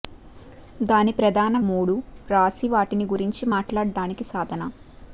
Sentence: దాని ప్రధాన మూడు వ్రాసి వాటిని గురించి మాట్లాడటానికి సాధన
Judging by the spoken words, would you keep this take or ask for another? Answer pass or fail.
pass